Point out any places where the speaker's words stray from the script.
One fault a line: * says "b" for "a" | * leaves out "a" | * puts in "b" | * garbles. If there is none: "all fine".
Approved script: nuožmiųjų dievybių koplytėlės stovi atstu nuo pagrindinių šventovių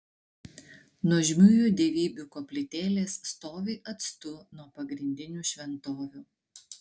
all fine